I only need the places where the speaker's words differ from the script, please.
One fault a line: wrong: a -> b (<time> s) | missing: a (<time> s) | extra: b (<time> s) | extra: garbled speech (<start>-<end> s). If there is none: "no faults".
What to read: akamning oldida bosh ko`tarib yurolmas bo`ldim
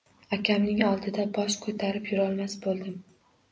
no faults